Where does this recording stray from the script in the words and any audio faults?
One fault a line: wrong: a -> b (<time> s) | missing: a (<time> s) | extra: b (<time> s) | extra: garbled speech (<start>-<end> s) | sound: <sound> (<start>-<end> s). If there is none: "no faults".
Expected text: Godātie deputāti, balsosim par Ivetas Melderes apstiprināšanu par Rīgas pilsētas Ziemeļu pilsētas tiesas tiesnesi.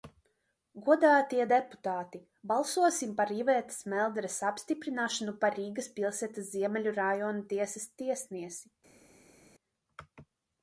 wrong: pilsētas -> rajona (7.0 s)